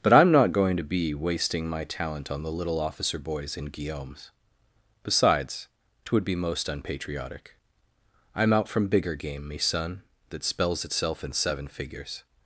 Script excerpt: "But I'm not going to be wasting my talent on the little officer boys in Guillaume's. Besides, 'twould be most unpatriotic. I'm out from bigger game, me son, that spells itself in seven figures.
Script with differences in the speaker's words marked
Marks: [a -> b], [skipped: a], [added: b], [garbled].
"But I'm not going to be wasting my talent on the little officer boys in Guillaume's. Besides, 'twould be most unpatriotic. I'm out from bigger game, me son, that spells itself in seven figures.